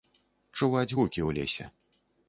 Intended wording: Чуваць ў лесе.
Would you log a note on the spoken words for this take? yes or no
yes